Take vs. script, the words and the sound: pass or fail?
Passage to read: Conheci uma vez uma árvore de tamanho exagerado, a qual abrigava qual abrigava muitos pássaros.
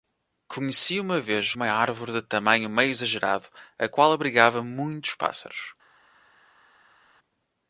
fail